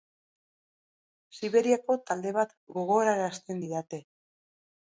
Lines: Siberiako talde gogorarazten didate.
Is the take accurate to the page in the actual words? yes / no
no